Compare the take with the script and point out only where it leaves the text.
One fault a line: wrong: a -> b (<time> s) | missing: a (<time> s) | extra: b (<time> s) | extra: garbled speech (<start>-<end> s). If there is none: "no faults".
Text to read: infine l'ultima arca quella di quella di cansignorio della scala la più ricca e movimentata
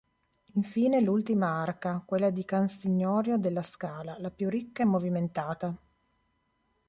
missing: quella di (2.4 s)